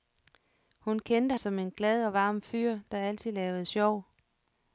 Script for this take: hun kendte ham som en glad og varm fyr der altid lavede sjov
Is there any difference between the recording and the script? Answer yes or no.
yes